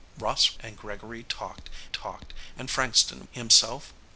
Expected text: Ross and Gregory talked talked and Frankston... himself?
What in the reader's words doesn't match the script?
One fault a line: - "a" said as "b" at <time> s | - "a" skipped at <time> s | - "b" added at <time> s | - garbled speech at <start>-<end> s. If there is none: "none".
none